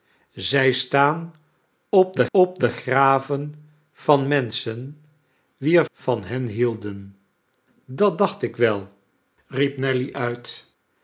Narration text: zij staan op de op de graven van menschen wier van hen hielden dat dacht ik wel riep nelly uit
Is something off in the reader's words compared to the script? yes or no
no